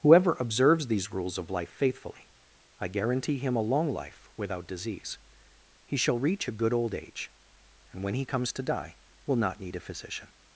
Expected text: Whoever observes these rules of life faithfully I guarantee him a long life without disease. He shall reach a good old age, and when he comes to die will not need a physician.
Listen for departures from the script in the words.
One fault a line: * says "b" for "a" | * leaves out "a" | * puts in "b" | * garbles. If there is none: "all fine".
all fine